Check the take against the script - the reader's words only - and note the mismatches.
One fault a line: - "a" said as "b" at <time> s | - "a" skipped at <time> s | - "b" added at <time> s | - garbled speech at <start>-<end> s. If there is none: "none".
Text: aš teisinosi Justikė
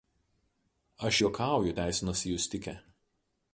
- "juokauju" added at 1.2 s